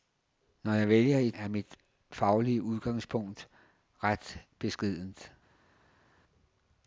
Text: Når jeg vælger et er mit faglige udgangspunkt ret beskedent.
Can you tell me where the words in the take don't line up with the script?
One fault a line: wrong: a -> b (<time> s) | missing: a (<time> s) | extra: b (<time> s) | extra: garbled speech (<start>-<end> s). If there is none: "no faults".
no faults